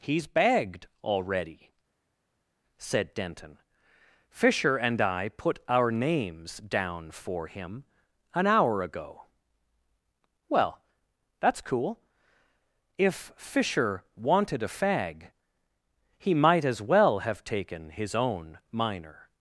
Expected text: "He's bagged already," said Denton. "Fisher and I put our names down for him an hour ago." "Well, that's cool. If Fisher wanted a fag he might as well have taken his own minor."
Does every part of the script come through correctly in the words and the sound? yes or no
yes